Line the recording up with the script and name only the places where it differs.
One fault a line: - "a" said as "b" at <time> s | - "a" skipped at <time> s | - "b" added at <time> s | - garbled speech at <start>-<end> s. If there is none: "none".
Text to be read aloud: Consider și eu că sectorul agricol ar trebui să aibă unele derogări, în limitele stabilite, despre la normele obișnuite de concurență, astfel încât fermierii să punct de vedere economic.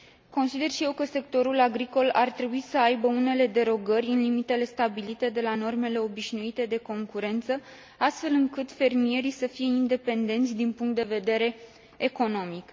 - "despre" said as "de" at 5.3 s
- "fie independenți din" added at 9.5 s